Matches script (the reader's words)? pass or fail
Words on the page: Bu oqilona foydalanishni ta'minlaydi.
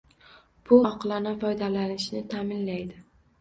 pass